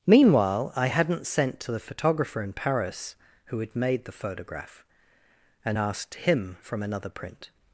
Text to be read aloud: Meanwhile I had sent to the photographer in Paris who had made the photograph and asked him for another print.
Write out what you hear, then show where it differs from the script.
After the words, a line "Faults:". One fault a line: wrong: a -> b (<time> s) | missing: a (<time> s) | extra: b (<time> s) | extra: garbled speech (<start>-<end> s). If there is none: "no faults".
Meanwhile I hadn't sent to the photographer in Paris who had made the photograph and asked him from another print.
Faults:
wrong: had -> hadn't (0.9 s)
wrong: for -> from (6.6 s)